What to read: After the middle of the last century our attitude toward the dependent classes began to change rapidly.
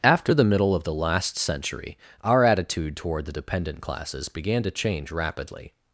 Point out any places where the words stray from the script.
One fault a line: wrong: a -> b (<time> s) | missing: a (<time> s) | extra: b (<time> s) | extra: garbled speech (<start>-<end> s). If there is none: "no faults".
no faults